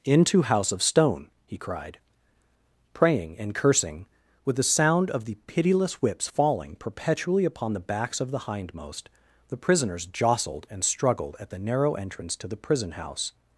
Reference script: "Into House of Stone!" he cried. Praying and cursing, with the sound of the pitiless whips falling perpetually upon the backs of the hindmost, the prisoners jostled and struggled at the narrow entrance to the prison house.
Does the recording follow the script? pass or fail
pass